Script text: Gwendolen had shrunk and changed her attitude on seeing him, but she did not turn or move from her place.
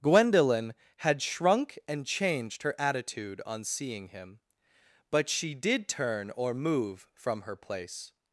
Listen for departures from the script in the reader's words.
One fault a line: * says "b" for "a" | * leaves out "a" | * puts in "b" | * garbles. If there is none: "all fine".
* leaves out "not"